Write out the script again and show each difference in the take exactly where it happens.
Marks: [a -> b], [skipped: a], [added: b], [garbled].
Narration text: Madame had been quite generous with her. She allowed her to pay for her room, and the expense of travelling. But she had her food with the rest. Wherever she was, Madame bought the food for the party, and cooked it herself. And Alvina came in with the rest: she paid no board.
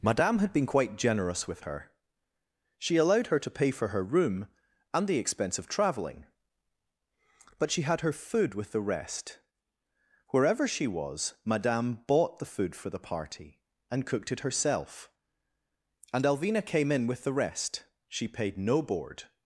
Madame had been quite generous with her. She allowed her to pay for her room, and the expense of travelling. But she had her food with the rest. Wherever she was, Madame bought the food for the party, and cooked it herself. And Alvina came in with the rest: she paid no board.